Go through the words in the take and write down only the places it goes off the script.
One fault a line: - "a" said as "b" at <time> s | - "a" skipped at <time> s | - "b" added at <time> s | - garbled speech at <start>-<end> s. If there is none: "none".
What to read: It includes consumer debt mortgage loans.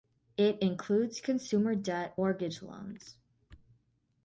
none